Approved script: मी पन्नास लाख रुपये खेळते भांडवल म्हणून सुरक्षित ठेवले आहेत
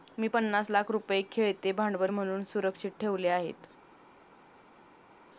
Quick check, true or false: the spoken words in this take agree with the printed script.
true